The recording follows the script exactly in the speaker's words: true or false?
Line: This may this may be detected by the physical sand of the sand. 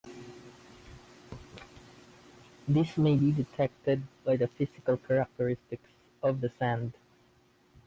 false